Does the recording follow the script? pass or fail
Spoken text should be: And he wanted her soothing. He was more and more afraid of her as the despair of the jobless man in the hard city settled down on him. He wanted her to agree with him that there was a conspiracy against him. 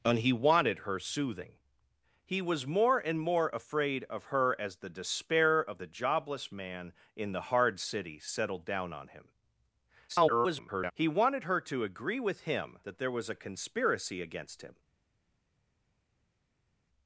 fail